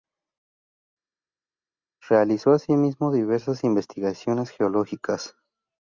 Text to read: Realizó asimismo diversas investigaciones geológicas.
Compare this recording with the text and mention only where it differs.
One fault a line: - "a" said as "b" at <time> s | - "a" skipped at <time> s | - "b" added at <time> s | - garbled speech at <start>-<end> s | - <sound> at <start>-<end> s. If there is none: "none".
none